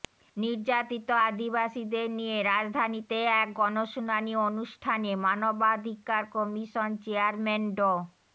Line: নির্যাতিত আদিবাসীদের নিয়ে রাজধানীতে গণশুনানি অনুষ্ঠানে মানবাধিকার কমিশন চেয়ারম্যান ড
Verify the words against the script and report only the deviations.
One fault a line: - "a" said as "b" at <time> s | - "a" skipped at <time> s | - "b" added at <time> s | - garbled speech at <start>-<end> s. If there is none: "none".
- "এক" added at 3.4 s